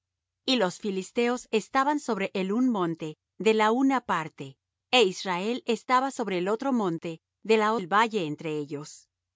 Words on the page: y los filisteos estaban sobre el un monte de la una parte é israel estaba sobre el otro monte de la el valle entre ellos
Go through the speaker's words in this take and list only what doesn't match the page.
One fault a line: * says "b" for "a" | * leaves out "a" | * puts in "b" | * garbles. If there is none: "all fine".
all fine